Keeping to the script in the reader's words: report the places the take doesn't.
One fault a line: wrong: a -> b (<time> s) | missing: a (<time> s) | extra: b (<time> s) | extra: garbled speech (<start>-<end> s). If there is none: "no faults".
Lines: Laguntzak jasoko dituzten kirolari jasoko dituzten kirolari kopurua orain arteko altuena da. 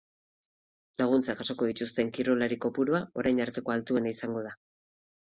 missing: jasoko dituzten kirolari (2.6 s)
extra: izango (4.2 s)